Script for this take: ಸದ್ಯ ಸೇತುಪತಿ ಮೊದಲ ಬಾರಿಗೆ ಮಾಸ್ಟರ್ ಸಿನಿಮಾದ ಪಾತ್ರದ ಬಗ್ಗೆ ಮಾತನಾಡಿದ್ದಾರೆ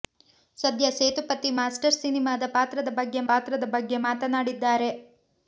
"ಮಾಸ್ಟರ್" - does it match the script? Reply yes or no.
no